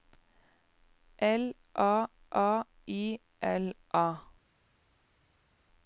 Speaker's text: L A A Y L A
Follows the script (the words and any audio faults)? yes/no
yes